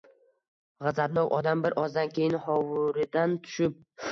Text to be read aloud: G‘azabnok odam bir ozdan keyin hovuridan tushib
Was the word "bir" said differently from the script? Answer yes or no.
no